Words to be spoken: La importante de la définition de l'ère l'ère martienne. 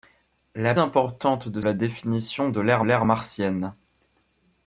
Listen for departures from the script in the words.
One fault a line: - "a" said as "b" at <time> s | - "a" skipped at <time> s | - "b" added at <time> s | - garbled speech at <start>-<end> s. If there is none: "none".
none